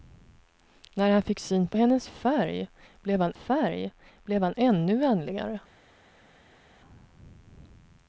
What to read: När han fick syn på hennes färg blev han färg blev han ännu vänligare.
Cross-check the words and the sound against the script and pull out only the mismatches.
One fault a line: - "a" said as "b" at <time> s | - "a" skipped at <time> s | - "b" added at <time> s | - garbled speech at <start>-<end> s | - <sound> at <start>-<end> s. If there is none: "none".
none